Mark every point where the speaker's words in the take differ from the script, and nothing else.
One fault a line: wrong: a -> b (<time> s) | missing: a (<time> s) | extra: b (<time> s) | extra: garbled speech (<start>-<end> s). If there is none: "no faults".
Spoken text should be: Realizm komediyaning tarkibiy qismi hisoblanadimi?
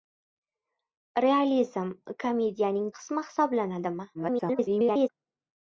missing: tarkibiy (2.9 s)
extra: garbled speech (4.1-5.1 s)